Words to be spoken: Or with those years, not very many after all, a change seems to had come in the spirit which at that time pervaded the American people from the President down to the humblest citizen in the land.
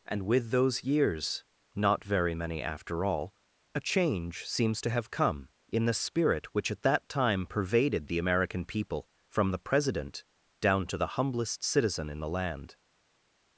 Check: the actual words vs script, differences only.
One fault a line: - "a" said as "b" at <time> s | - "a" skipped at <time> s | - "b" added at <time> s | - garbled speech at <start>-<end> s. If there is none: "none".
- "Or" said as "And" at 0.1 s
- "had" said as "have" at 4.9 s